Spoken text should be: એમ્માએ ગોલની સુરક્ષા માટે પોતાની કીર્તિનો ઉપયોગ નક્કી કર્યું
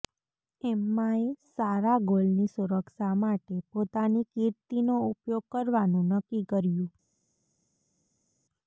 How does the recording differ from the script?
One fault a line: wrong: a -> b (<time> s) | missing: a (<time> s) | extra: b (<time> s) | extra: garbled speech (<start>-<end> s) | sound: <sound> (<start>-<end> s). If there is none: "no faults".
extra: સારા (1.5 s)
extra: કરવાનું (5.5 s)